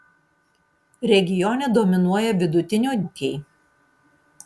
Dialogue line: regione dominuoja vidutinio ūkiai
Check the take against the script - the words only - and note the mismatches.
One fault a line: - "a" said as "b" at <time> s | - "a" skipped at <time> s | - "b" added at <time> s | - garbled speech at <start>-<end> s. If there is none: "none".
none